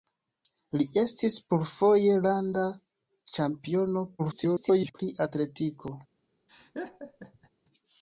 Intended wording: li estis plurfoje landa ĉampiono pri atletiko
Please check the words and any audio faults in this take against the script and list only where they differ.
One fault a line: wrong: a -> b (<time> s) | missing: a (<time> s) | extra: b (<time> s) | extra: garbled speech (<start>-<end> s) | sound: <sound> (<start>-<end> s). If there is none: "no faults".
extra: garbled speech (4.2-4.9 s)
sound: laugh (6.5-7.5 s)